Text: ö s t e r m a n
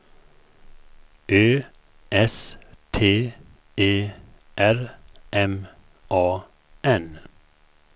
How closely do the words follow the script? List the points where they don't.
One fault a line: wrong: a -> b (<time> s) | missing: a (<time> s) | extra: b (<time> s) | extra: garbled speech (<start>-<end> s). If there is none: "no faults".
no faults